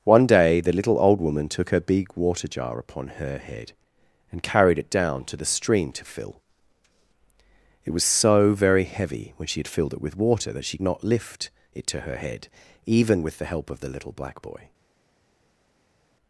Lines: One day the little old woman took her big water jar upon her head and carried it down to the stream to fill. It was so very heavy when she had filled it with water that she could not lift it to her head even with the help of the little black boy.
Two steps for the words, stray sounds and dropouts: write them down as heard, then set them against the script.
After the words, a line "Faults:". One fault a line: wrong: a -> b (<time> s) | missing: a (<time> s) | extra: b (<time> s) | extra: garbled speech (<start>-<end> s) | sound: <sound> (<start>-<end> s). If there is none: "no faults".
One day the little old woman took her big water jar upon her head and carried it down to the stream to fill. It was so very heavy when she had filled it with water that she not lift it to her head even with the help of the little black boy.
Faults:
missing: could (10.8 s)